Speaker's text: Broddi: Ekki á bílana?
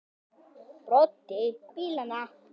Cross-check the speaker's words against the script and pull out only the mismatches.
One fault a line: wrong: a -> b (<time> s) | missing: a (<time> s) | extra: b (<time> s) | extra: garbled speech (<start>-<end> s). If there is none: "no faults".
missing: Ekki (1.4 s)